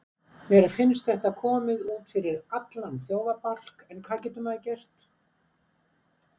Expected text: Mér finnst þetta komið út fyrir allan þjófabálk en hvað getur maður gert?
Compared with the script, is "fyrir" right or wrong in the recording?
right